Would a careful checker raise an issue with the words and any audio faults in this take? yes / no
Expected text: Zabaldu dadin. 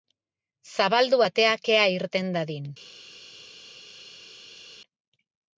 yes